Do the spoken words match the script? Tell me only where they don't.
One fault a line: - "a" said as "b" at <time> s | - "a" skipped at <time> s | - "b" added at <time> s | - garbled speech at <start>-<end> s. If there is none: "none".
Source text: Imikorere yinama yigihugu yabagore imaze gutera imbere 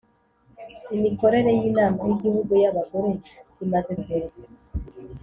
- "gutera" skipped at 3.9 s